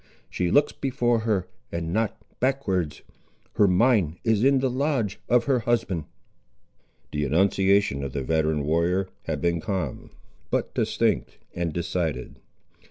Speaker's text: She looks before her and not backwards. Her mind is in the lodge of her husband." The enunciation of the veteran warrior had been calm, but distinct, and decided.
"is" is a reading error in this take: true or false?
false